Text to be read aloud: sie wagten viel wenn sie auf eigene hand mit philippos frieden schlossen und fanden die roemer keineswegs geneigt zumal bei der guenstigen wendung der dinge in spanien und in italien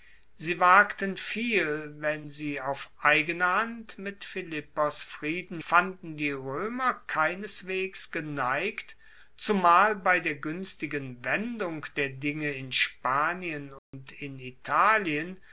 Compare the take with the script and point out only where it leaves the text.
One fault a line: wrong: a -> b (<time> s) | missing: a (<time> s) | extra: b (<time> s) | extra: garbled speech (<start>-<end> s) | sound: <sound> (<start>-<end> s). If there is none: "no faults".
missing: schlossen und (5.6 s)
sound: dropout (13.8-13.9 s)